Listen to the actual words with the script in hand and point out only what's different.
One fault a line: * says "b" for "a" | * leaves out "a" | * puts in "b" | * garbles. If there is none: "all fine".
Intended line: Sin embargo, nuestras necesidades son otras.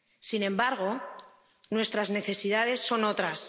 all fine